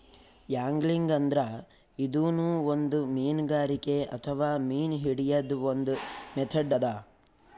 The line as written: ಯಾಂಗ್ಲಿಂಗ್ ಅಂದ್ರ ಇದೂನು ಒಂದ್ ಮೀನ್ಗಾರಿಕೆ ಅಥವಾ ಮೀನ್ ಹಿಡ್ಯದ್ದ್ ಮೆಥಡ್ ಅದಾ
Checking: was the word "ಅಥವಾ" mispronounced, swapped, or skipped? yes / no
no